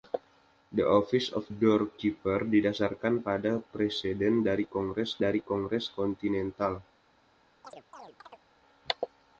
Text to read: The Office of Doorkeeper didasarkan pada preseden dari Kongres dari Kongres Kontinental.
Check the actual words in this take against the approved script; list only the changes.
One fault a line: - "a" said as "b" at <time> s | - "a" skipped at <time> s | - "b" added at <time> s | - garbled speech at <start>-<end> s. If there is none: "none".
none